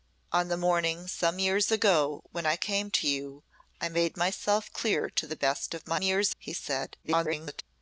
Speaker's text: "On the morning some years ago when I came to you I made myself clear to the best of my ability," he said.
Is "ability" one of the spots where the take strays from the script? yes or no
yes